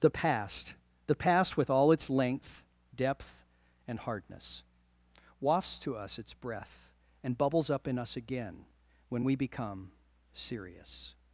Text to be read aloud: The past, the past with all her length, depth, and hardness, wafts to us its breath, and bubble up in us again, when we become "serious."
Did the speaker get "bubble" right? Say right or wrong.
wrong